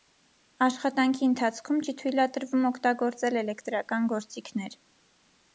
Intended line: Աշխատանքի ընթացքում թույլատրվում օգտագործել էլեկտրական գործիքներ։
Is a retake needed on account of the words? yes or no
yes